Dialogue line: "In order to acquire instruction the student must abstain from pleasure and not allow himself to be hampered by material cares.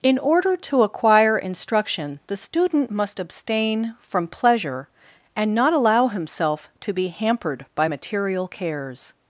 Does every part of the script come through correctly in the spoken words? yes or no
yes